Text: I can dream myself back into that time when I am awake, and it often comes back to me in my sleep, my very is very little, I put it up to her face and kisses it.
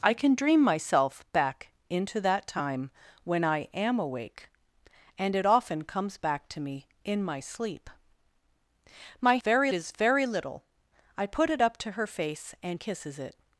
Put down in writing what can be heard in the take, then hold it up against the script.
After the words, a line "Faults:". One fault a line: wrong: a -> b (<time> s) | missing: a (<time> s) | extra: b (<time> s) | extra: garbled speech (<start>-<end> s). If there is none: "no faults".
I can dream myself back into that time when I am awake, and it often comes back to me in my sleep, my very is very little, I put it up to her face and kisses it.
Faults:
no faults